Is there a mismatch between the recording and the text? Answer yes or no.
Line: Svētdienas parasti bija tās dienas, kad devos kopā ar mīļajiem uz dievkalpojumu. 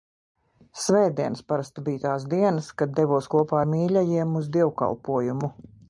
no